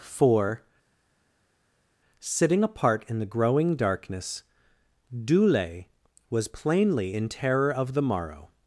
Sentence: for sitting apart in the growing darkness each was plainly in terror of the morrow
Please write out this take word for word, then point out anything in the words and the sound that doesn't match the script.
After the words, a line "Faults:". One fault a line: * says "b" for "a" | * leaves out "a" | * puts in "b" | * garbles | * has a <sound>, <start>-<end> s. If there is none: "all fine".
for sitting apart in the growing darkness dule was plainly in terror of the morrow
Faults:
* says "dule" for "each"